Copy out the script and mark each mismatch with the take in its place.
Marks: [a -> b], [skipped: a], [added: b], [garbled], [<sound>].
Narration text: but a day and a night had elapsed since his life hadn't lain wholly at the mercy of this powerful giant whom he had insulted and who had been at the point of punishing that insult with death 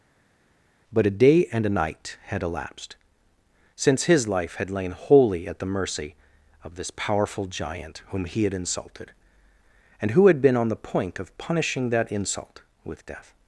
but a day and a night had elapsed since his life [hadn't -> had] lain wholly at the mercy of this powerful giant whom he had insulted and who had been [at -> on] the point of punishing that insult with death